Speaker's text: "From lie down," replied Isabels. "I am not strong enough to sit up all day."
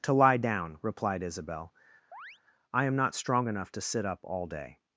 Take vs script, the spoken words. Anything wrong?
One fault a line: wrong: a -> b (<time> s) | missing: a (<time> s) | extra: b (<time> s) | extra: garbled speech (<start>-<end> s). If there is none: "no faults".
wrong: From -> To (0.0 s)
wrong: Isabels -> Isabel (1.2 s)